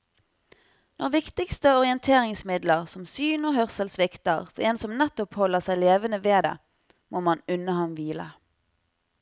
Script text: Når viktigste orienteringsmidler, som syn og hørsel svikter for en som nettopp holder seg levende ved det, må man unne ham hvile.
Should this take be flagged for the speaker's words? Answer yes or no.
no